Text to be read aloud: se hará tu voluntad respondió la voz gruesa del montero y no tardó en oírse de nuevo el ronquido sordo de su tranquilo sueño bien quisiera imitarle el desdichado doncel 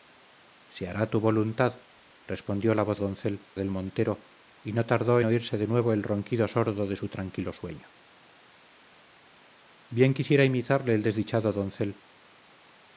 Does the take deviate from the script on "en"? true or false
true